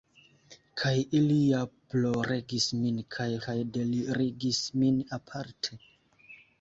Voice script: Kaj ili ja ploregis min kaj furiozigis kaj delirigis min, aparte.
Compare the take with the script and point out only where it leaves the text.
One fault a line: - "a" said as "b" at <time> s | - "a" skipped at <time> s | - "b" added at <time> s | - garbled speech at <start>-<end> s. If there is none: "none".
- "furiozigis" skipped at 3.3 s